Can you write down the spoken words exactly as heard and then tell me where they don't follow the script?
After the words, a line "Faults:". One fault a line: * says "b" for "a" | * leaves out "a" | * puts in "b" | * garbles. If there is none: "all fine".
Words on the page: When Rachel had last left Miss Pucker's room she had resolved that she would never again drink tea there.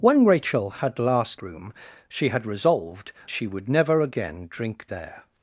When Rachel had last room she had resolved she would never again drink there.
Faults:
* leaves out "left Miss Pucker's"
* leaves out "that"
* leaves out "tea"